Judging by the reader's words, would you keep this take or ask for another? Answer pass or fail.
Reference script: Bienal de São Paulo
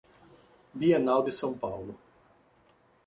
pass